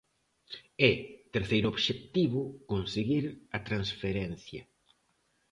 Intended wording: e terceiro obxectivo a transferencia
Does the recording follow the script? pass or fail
fail